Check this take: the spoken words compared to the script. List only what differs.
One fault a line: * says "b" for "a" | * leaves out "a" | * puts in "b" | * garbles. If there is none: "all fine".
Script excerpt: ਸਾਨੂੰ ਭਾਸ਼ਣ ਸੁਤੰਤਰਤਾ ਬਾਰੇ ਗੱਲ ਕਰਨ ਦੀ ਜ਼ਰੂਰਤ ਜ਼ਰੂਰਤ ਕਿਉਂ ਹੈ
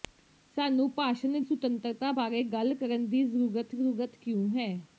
all fine